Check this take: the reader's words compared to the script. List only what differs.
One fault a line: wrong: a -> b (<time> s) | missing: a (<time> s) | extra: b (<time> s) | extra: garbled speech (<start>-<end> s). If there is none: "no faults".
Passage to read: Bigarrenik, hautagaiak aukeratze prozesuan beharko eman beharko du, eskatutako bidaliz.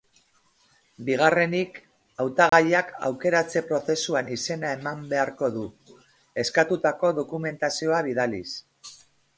wrong: beharko -> izena (4.4 s)
extra: dokumentazioa (7.2 s)